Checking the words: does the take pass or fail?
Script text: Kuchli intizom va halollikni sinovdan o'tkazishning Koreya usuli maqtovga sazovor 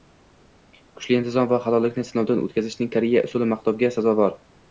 pass